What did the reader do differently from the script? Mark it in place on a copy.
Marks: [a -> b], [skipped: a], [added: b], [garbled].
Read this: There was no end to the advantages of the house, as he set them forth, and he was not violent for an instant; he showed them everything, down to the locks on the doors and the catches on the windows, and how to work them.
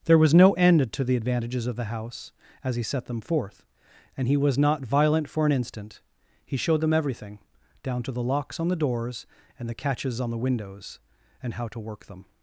There was no end to the advantages of the house, as he set them forth, and he was not violent for an instant; he showed them everything, down to the locks on the doors and the catches on the windows, and how to work them.